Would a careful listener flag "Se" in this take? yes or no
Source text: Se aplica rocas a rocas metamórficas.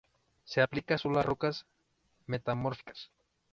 no